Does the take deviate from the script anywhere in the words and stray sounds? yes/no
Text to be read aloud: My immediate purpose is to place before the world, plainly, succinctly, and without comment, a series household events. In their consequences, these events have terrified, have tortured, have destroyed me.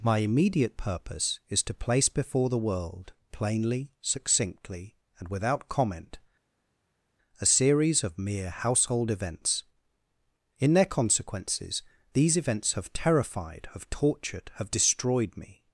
yes